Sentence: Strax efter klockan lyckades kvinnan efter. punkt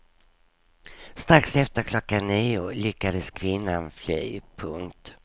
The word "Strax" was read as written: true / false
true